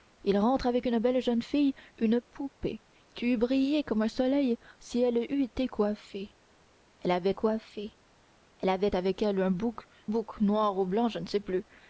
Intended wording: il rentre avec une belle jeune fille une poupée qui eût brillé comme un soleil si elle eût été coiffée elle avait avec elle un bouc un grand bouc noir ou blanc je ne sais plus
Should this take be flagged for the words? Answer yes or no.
yes